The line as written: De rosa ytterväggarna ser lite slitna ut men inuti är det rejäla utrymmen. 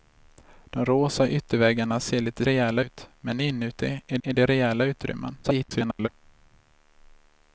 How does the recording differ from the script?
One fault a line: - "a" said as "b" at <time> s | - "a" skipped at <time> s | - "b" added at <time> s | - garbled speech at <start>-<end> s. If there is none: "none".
- "slitna" said as "rejäla" at 2.4 s
- "är" added at 4.2 s
- garbled speech at 5.4-6.1 s